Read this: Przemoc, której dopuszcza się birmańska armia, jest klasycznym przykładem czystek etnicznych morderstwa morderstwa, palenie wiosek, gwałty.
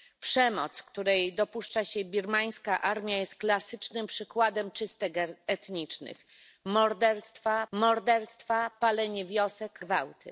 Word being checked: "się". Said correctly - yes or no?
yes